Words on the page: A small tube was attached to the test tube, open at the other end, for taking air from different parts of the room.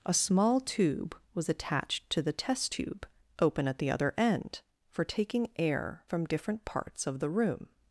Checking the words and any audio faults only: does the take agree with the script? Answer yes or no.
yes